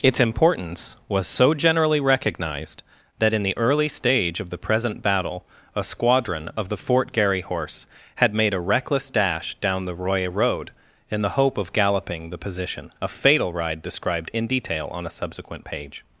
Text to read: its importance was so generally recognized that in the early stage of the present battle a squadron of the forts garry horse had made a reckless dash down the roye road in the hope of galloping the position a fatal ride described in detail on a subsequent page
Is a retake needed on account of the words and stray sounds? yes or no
yes